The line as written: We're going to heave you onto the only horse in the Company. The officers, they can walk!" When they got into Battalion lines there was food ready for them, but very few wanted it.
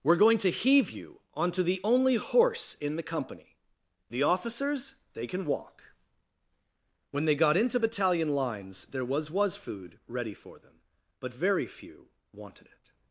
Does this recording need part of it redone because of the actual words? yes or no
yes